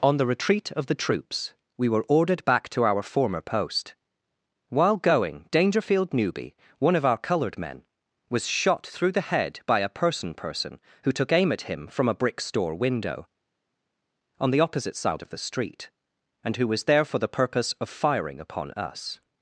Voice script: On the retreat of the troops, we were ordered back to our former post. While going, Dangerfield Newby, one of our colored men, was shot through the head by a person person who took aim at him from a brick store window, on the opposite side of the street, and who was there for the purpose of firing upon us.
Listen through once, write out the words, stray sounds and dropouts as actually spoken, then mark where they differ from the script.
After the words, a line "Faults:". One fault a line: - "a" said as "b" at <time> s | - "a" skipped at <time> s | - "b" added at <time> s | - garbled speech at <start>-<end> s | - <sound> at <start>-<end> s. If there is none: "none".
On the retreat of the troops, we were ordered back to our former post. While going, Dangerfield Newby, one of our colored men, was shot through the head by a person person who took aim at him from a brick store window, on the opposite side of the street, and who was there for the purpose of firing upon us.
Faults:
none